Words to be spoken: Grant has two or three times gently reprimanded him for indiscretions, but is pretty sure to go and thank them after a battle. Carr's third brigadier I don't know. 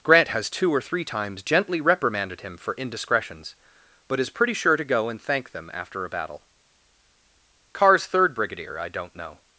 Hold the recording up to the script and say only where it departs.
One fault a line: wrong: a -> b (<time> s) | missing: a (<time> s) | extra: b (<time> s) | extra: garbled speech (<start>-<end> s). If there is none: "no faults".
no faults